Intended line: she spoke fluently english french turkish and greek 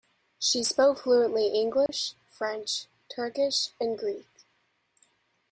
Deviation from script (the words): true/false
false